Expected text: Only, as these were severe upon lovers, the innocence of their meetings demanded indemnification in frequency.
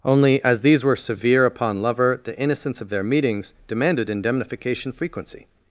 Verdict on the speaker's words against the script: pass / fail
fail